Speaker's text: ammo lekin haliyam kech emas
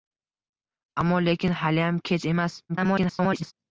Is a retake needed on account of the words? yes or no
yes